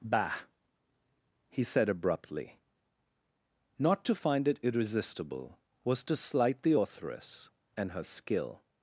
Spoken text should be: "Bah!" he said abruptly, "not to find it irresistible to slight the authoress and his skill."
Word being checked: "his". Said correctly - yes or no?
no